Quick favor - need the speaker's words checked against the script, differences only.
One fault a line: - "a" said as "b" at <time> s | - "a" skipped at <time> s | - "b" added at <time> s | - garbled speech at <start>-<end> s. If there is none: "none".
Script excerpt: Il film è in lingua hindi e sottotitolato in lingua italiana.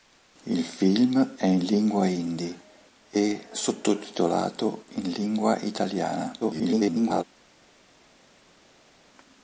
- garbled speech at 6.4-7.2 s